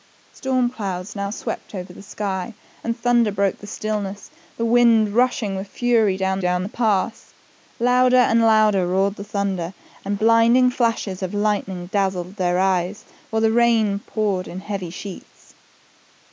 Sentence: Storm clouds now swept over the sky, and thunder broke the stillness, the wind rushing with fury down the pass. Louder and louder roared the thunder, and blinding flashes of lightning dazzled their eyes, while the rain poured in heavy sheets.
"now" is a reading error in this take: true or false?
false